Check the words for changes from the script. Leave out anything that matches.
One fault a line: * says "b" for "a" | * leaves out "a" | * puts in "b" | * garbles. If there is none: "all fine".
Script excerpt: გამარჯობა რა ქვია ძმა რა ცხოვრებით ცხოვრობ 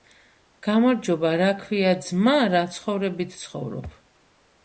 all fine